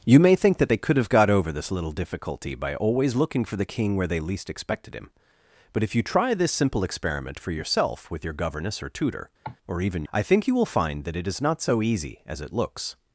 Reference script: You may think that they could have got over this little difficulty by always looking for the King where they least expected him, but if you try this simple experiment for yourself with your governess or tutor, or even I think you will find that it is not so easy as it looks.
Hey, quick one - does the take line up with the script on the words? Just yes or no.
yes